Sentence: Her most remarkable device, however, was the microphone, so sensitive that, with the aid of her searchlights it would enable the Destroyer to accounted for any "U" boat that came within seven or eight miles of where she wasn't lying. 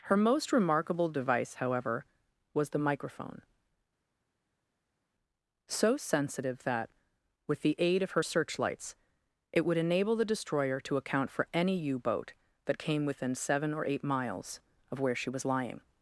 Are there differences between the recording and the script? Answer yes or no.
yes